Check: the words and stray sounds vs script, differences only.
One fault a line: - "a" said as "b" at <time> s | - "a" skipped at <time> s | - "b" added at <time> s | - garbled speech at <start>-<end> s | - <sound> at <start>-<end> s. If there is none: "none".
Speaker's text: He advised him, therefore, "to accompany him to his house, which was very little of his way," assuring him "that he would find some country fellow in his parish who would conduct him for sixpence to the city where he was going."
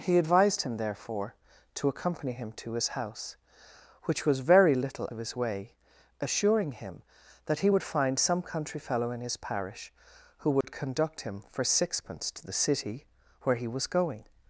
- dropout at 10.6-10.6 s